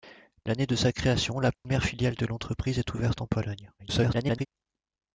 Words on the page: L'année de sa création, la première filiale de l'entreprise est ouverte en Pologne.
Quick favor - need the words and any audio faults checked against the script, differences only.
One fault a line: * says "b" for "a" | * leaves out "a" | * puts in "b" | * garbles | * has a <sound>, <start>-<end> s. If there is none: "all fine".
* has a dropout, 1.6-1.6 s
* garbles